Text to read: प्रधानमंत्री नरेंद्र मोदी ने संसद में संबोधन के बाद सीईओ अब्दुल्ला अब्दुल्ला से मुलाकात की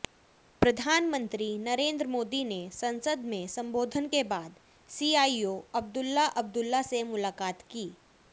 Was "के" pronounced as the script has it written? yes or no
yes